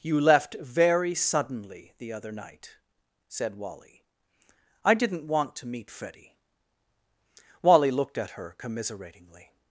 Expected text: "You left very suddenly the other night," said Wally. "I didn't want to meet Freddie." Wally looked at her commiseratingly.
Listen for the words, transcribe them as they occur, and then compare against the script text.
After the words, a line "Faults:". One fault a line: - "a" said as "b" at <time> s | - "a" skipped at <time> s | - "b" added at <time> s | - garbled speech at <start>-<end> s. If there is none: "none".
"You left very suddenly the other night," said Wally. "I didn't want to meet Freddie." Wally looked at her commiseratingly.
Faults:
none